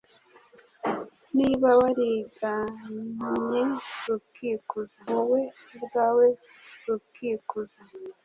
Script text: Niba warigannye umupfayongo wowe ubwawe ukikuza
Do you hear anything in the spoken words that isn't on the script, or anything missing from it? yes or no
yes